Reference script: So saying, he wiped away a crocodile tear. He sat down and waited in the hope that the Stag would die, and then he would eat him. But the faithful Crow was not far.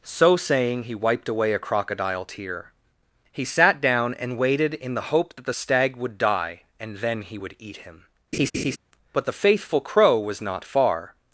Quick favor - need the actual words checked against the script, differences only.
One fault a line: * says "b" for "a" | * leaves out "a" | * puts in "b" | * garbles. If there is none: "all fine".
all fine